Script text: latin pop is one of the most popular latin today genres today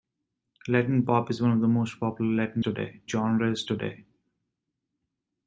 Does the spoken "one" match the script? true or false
true